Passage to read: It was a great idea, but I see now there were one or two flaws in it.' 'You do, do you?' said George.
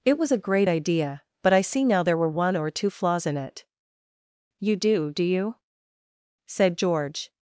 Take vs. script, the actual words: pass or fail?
pass